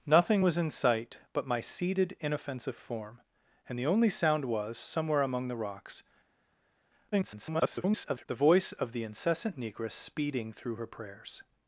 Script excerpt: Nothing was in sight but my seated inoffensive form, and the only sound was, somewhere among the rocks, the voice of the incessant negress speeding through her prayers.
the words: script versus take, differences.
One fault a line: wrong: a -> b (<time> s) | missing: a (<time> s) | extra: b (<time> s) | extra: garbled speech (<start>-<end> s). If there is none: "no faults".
extra: garbled speech (7.1-8.3 s)